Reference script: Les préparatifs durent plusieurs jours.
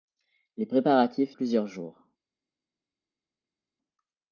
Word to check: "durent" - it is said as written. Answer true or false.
false